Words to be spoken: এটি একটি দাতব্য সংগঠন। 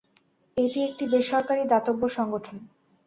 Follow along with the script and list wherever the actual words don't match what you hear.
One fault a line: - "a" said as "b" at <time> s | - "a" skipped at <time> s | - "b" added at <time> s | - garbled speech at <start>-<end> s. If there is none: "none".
- "বেসরকারী" added at 1.1 s